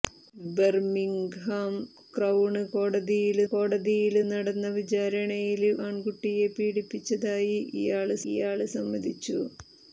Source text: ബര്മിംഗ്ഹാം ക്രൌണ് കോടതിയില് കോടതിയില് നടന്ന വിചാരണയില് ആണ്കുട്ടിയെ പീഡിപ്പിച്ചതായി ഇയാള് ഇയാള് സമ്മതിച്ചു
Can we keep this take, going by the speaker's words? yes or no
yes